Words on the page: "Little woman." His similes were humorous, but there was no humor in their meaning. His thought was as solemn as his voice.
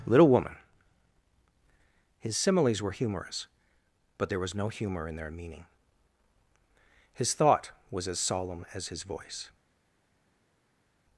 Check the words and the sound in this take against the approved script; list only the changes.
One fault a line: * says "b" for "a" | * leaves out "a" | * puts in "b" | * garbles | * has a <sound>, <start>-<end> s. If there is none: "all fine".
all fine